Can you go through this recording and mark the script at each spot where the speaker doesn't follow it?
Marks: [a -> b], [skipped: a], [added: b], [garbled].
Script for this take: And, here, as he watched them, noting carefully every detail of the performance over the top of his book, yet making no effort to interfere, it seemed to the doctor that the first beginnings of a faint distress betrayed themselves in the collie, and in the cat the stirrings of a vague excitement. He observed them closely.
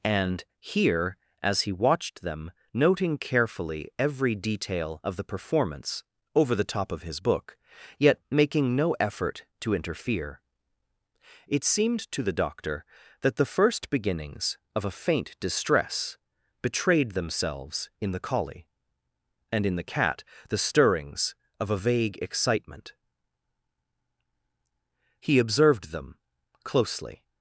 And, here, as he watched them, noting carefully every detail of the performance over the top of his book, yet making no effort to interfere, it seemed to the doctor that the first beginnings of a faint distress betrayed themselves in the collie, and in the cat the stirrings of a vague excitement. He observed them closely.